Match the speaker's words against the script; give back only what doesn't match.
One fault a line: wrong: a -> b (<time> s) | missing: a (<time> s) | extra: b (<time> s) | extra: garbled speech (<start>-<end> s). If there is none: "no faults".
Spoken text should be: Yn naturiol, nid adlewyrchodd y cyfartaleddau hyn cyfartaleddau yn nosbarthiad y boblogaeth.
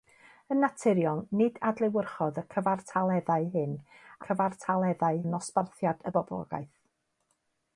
no faults